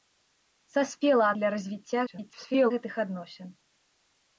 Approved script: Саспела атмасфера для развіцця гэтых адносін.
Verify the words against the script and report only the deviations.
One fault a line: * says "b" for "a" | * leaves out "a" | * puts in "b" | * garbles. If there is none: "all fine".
* leaves out "атмасфера"
* garbles